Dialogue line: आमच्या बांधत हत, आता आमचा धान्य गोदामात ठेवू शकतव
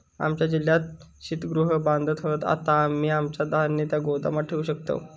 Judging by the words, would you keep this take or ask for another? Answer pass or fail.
fail